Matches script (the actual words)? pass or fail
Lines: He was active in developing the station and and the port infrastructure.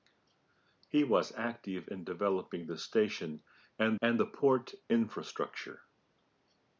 pass